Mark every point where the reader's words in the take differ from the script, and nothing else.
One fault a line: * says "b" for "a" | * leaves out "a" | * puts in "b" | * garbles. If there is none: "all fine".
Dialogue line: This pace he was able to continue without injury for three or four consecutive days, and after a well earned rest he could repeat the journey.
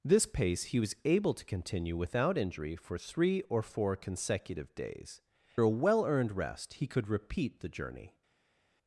* leaves out "and after"